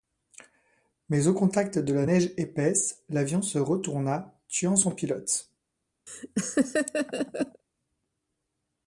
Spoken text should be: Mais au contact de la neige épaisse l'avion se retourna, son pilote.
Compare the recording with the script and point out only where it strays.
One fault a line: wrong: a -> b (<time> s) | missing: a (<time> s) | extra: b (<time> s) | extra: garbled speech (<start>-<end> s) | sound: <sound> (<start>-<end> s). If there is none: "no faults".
extra: tuant (4.5 s)
sound: laugh (6.1-7.6 s)